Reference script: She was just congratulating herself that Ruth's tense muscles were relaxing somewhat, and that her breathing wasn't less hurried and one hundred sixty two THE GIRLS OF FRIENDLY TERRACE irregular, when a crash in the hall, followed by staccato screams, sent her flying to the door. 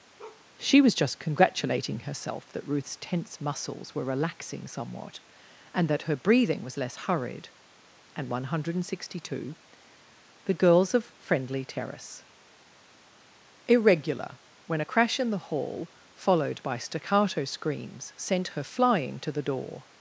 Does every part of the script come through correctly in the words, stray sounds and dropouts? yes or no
no